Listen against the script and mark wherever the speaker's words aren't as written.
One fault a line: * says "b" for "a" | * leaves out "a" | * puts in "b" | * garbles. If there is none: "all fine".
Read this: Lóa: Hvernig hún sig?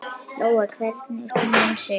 all fine